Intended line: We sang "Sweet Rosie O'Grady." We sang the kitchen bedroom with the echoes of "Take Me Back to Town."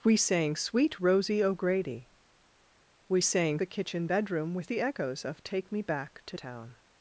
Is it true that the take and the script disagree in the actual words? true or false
false